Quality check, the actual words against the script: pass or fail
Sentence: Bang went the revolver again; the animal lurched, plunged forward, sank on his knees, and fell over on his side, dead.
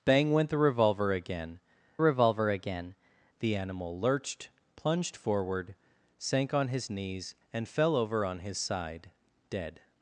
fail